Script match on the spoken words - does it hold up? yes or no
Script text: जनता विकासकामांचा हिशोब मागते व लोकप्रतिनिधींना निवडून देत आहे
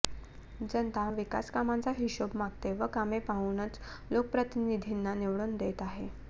no